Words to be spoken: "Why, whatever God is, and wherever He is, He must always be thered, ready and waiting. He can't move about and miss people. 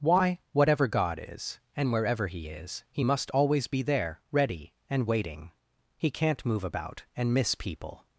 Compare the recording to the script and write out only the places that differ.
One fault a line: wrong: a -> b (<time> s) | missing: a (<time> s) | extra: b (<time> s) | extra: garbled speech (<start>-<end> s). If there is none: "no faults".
wrong: thered -> there (3.8 s)